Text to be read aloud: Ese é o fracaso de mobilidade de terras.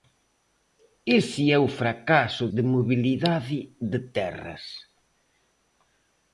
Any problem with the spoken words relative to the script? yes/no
no